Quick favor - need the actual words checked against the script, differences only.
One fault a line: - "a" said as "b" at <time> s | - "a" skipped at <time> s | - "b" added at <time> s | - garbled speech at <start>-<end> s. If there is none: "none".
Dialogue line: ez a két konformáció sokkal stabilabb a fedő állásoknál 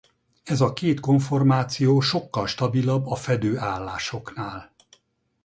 none